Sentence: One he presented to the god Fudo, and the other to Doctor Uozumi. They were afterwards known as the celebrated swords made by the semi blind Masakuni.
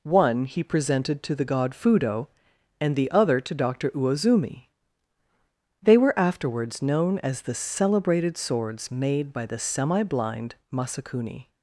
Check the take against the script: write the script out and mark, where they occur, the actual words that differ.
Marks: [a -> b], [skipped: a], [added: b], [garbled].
One he presented to the god Fudo, and the other to Doctor Uozumi. They were afterwards known as the celebrated swords made by the semi blind Masakuni.